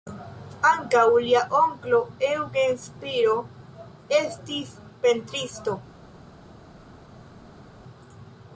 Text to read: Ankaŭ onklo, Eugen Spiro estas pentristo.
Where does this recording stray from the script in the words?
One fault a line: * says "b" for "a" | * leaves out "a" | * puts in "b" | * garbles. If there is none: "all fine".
* puts in "lia"
* says "estis" for "estas"